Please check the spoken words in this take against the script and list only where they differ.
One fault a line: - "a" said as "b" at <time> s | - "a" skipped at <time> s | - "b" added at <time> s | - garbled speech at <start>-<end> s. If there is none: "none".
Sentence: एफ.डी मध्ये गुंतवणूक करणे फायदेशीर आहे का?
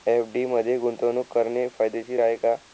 none